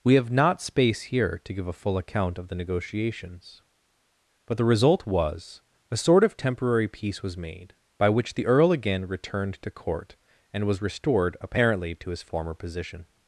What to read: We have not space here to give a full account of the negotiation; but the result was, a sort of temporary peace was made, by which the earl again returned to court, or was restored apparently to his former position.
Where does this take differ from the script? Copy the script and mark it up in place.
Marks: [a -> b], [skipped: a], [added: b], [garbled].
We have not space here to give a full account of the [negotiation; -> negotiations] but the result was, a sort of temporary peace was made, by which the earl again returned to court, [or -> and] was restored apparently to his former position.